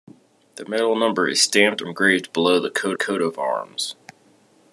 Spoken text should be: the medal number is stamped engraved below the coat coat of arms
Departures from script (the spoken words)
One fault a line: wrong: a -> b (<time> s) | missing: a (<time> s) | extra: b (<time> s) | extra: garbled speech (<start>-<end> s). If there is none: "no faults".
no faults